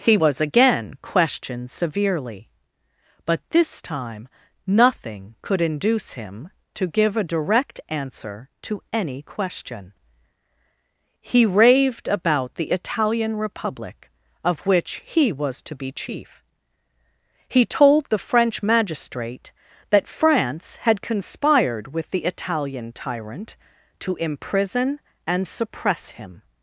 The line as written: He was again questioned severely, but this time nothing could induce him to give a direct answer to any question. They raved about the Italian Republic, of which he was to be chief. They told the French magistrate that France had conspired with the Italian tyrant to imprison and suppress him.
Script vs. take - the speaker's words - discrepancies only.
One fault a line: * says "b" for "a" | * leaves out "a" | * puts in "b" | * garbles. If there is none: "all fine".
* says "He" for "They"
* says "He" for "They"